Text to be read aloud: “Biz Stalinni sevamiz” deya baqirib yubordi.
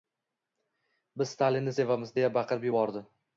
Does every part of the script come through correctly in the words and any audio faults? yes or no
yes